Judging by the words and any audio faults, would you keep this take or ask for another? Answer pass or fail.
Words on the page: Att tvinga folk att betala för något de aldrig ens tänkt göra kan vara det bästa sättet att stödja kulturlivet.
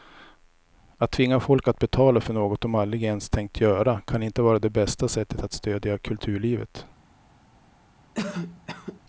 fail